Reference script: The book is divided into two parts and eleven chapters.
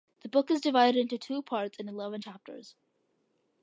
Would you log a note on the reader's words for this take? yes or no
no